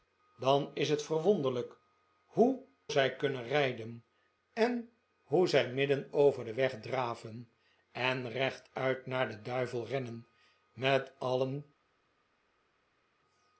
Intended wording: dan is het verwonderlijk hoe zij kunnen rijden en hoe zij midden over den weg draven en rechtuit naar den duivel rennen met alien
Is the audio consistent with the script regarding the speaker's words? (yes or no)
yes